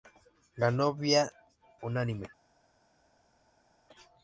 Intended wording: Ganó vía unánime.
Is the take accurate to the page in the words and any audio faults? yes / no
yes